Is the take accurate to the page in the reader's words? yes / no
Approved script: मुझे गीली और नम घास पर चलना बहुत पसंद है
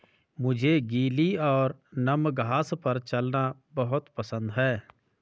yes